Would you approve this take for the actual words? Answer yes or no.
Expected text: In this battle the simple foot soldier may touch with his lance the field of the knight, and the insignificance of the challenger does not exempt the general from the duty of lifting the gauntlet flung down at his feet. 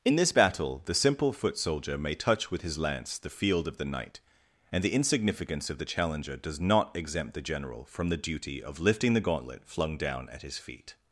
yes